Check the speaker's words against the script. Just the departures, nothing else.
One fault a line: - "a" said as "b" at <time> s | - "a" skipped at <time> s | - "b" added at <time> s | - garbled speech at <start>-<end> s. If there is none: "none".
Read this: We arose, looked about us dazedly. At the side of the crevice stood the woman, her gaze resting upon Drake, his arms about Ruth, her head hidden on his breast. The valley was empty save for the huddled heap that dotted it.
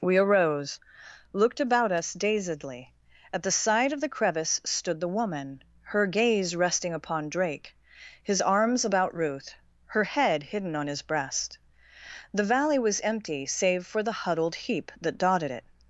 none